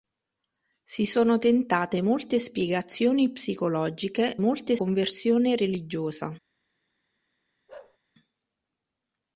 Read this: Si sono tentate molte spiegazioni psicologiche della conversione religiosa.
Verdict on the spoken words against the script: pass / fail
fail